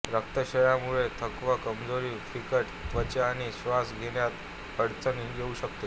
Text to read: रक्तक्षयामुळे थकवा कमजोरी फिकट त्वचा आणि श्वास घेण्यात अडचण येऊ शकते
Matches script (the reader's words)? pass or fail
pass